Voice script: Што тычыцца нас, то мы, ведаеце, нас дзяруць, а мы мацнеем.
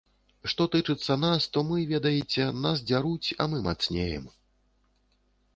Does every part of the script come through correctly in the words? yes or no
yes